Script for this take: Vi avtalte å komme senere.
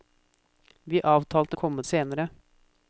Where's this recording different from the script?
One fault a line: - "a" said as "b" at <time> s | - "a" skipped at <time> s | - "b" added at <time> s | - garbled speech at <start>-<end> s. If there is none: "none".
none